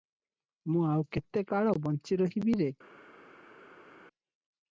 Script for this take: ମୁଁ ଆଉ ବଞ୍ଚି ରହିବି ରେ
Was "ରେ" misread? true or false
false